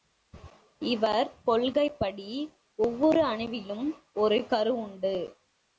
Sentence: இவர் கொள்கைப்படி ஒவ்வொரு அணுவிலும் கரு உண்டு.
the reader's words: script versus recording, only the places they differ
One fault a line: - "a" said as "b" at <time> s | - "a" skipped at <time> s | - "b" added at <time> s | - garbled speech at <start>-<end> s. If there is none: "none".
- "ஒரு" added at 4.1 s